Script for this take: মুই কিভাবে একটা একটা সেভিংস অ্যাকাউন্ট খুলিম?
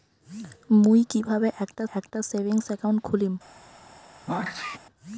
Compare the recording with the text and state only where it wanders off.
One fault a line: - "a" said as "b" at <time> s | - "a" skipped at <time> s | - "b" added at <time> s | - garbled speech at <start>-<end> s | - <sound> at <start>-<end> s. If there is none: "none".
- sneeze at 4.3-4.8 s